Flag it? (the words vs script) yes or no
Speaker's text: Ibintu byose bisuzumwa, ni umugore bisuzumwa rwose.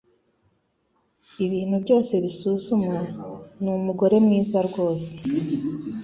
yes